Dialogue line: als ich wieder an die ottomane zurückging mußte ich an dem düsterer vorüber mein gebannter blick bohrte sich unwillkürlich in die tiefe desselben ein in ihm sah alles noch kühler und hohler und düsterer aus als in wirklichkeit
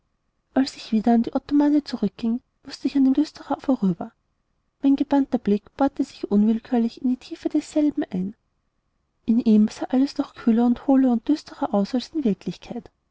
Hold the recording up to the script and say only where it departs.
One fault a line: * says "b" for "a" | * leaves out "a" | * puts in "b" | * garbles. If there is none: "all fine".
all fine